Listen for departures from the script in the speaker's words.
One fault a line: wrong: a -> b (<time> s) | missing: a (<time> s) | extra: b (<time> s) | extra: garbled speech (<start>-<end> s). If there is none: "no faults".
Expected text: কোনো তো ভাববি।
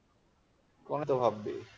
no faults